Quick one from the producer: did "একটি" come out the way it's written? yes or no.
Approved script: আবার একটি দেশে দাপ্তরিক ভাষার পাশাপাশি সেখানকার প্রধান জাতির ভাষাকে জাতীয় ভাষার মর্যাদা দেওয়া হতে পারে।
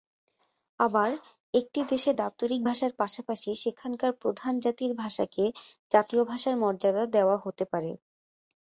yes